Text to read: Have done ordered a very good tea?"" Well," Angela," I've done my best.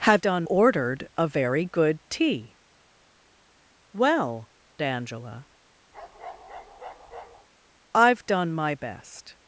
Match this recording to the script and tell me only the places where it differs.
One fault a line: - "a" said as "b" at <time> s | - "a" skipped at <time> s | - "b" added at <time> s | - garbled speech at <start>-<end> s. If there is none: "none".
none